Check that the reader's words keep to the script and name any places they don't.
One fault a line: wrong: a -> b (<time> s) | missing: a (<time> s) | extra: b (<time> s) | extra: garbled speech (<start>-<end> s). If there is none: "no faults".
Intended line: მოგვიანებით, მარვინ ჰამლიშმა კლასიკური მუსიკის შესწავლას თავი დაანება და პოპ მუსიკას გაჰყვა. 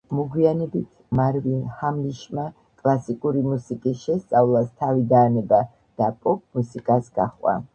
no faults